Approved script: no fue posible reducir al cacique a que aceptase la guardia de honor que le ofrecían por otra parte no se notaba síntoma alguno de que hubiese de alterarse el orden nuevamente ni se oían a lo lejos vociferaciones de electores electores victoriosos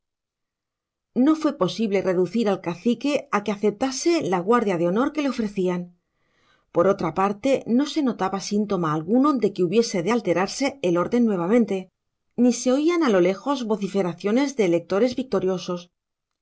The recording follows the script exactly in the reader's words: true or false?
false